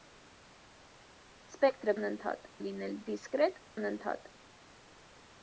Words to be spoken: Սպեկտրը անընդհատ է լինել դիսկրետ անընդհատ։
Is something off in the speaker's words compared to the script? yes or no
no